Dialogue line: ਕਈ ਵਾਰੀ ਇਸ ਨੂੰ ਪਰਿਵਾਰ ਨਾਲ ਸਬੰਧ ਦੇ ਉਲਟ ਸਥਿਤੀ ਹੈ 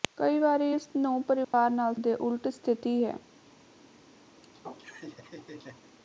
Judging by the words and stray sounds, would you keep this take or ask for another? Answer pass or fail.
fail